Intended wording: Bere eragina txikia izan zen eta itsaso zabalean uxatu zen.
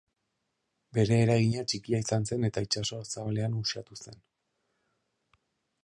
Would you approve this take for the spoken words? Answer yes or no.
yes